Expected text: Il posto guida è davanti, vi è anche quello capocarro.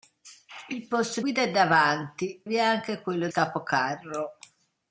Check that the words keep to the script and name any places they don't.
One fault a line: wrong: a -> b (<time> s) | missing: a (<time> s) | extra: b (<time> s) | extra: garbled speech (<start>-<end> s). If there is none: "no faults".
no faults